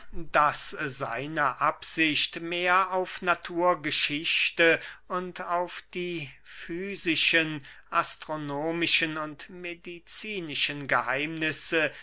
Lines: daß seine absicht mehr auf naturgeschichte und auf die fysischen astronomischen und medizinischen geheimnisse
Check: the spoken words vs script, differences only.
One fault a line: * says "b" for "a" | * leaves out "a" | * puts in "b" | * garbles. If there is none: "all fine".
all fine